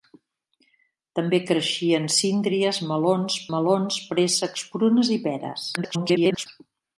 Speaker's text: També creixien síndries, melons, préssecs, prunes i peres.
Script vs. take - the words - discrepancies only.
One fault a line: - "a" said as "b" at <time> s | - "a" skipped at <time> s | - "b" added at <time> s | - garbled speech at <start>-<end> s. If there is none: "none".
- "melons" added at 3.6 s
- garbled speech at 5.8-6.5 s